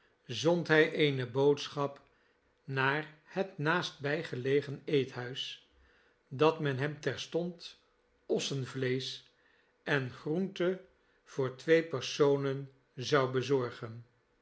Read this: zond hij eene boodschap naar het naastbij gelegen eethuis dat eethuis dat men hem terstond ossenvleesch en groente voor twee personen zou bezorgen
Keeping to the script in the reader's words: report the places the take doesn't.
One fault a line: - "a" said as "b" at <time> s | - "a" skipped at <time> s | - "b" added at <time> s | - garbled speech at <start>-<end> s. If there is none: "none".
- "eethuis dat" skipped at 6.6 s